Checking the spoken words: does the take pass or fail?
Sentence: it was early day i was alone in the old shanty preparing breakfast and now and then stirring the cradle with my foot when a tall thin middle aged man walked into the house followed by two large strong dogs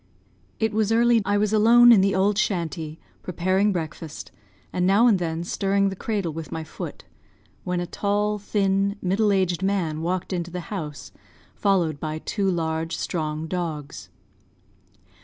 fail